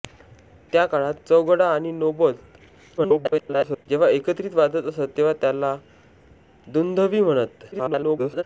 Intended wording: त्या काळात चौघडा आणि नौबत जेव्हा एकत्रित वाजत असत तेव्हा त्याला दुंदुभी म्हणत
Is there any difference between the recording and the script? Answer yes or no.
yes